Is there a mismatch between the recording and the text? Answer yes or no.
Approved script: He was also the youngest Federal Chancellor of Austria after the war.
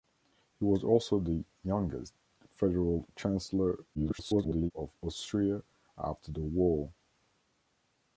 yes